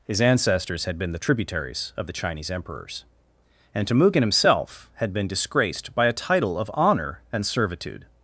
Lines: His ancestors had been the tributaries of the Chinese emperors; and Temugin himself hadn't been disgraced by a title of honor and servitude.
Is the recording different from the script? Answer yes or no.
yes